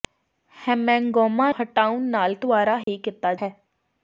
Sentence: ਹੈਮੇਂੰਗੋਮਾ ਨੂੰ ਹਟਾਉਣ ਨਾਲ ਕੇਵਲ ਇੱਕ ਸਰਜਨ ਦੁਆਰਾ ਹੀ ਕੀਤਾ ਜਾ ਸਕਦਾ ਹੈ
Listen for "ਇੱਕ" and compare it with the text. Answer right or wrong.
wrong